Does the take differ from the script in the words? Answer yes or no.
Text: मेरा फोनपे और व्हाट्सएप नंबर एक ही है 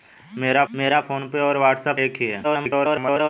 yes